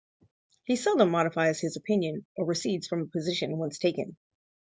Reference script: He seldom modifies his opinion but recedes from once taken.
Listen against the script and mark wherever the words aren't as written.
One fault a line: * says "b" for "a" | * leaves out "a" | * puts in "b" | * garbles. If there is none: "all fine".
* says "or" for "but"
* puts in "a position"